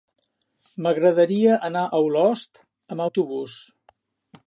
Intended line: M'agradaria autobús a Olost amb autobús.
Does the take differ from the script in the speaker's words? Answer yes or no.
yes